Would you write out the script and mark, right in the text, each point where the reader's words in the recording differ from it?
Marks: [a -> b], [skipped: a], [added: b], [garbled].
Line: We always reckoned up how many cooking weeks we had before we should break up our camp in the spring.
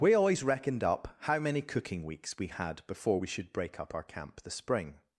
We always reckoned up how many cooking weeks we had before we should break up our camp [skipped: in] the spring.